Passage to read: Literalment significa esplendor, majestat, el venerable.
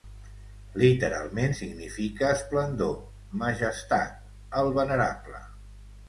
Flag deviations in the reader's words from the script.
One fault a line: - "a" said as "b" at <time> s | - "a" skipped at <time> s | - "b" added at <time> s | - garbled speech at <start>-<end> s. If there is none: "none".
none